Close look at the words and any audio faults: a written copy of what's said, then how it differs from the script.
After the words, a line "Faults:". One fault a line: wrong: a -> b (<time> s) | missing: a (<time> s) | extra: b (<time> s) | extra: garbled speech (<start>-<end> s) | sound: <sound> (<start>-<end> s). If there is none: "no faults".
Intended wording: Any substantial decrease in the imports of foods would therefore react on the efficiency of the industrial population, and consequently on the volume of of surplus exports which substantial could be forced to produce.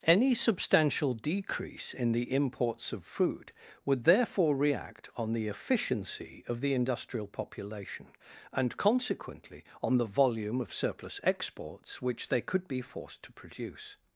Any substantial decrease in the imports of food would therefore react on the efficiency of the industrial population, and consequently on the volume of surplus exports which they could be forced to produce.
Faults:
wrong: foods -> food (3.0 s)
missing: of (10.7 s)
wrong: substantial -> they (12.3 s)